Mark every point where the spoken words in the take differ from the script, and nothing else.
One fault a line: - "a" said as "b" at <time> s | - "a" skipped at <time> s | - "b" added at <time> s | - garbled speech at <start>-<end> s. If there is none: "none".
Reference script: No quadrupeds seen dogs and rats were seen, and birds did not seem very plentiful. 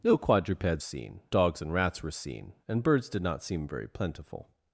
none